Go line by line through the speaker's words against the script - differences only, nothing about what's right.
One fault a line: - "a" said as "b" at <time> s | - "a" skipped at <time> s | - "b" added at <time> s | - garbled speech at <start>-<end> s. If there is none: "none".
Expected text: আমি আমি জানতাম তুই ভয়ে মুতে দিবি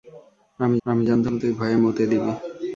none